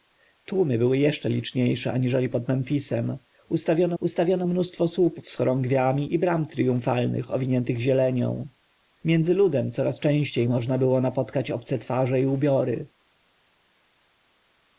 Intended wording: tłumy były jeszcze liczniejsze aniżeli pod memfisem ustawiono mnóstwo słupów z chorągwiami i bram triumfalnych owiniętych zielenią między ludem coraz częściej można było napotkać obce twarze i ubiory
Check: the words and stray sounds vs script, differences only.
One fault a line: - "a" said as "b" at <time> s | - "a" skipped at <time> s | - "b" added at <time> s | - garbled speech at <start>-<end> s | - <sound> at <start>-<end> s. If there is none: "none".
- "ustawiono" added at 4.0 s